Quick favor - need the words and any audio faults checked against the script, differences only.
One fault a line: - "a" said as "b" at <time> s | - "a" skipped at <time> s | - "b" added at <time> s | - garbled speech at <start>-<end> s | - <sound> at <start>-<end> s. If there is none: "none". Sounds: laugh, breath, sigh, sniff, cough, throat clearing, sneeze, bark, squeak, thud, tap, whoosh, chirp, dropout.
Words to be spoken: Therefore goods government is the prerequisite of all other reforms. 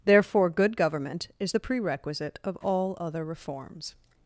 - "goods" said as "good" at 0.5 s